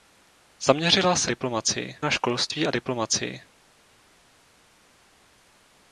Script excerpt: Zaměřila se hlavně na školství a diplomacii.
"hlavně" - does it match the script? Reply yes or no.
no